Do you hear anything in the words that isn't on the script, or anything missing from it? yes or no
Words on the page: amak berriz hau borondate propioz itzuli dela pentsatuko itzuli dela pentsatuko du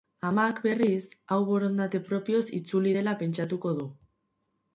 yes